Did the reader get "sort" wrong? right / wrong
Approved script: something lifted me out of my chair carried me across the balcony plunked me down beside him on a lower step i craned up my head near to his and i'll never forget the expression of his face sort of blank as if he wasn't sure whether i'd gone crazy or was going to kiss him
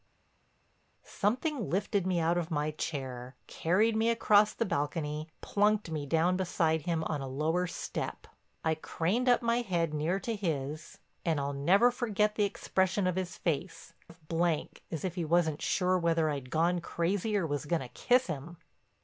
wrong